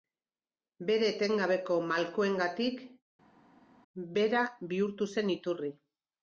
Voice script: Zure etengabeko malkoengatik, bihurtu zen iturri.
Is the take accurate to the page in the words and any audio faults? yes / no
no